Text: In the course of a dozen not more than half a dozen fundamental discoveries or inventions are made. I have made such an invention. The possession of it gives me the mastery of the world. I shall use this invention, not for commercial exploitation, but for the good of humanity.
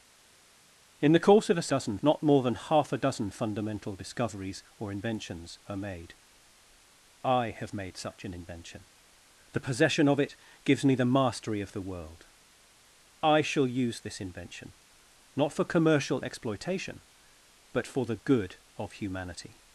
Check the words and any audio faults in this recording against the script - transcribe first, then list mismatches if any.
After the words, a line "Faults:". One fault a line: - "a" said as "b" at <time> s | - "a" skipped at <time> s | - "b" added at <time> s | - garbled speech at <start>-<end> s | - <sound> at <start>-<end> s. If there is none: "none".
In the course of a dozen not more than half a dozen fundamental discoveries or inventions are made. I have made such an invention. The possession of it gives me the mastery of the world. I shall use this invention, not for commercial exploitation, but for the good of humanity.
Faults:
none